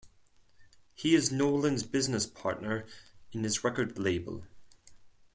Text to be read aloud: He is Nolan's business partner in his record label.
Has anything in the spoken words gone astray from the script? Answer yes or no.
no